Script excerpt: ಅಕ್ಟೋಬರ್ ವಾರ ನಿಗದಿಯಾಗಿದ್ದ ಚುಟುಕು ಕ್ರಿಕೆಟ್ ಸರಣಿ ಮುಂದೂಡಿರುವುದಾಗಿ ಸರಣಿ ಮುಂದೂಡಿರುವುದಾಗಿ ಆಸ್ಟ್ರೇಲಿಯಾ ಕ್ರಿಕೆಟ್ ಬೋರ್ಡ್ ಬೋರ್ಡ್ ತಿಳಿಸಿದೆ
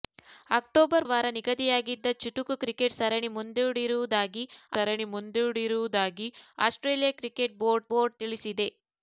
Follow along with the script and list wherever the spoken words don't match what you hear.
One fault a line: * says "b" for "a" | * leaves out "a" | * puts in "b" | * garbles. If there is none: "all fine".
all fine